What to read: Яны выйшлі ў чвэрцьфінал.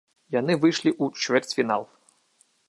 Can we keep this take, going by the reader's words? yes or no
yes